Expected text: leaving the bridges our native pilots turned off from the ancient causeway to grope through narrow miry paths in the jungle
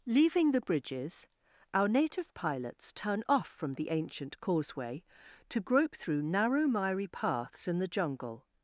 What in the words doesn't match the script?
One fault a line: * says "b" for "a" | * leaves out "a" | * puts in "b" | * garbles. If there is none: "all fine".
* says "turn" for "turned"